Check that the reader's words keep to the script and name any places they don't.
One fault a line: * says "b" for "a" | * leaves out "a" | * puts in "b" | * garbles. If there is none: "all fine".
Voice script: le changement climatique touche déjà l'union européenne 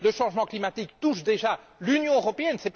all fine